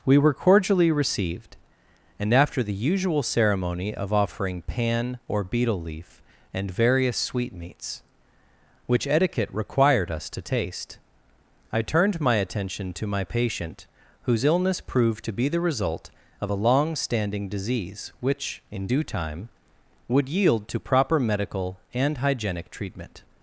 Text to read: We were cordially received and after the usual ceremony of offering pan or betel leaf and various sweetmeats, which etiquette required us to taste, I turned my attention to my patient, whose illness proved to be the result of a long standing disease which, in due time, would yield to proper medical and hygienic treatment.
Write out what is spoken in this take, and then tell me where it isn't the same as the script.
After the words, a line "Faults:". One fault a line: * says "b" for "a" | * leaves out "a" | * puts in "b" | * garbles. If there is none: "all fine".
We were cordially received and after the usual ceremony of offering pan or betel leaf and various sweetmeats, which etiquette required us to taste, I turned my attention to my patient, whose illness proved to be the result of a long standing disease which, in due time, would yield to proper medical and hygienic treatment.
Faults:
all fine